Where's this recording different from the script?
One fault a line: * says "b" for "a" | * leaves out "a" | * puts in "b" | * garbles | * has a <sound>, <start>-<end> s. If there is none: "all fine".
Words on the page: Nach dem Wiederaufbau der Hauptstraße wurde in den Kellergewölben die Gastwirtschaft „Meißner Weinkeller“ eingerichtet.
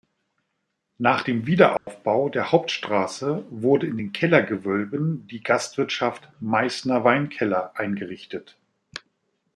* has a dropout, 1.8-1.9 s